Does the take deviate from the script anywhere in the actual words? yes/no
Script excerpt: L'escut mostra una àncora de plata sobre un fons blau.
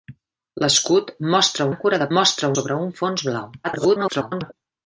yes